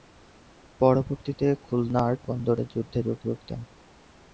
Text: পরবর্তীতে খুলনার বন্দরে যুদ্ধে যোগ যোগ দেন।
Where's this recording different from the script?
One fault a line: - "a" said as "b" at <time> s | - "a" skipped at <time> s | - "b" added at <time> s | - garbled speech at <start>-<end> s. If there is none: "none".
none